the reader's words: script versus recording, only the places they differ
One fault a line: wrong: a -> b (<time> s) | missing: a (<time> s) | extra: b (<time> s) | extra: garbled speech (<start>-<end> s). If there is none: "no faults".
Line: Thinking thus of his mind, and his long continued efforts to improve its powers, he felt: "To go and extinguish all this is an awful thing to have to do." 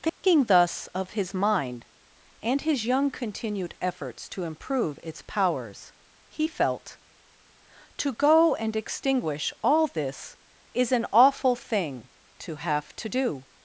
wrong: long -> young (2.9 s)